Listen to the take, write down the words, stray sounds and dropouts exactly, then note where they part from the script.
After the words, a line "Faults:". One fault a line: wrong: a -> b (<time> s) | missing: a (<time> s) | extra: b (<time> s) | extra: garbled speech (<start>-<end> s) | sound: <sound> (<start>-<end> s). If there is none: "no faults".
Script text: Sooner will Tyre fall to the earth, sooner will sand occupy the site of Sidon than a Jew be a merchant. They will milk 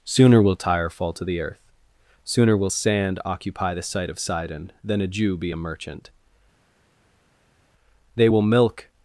Sooner will Tyre fall to the earth, sooner will sand occupy the site of Sidon than a Jew be a merchant. They will milk
Faults:
no faults